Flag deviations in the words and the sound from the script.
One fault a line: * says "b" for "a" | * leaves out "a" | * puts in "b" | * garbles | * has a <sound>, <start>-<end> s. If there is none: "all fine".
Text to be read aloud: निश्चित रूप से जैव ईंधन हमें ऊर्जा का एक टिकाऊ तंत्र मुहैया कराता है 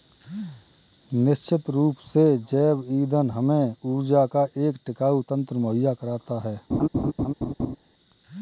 * has a laugh, 6.7-7.8 s